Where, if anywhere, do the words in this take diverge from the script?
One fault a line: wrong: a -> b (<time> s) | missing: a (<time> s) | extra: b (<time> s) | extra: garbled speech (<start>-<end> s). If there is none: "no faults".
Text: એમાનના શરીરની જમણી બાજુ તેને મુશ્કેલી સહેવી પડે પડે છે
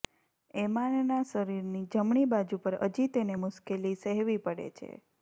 extra: પર હજી (2.6 s)
missing: પડે (4.7 s)